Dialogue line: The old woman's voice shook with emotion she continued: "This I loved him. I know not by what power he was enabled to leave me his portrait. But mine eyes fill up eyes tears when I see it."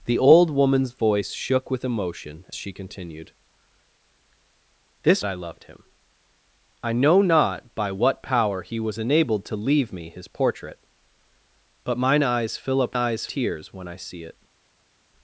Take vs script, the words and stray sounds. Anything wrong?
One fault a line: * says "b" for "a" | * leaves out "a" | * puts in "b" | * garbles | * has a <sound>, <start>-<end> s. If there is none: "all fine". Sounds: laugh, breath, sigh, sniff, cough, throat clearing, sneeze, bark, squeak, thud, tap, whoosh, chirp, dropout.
all fine